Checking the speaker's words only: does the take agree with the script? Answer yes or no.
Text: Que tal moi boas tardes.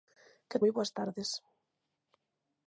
no